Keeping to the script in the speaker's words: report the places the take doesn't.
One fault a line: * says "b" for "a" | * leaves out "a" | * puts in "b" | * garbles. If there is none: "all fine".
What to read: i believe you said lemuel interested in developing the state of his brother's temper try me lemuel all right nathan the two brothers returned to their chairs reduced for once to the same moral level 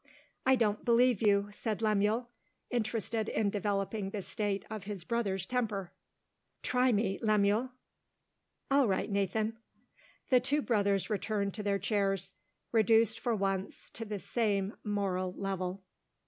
* puts in "don't"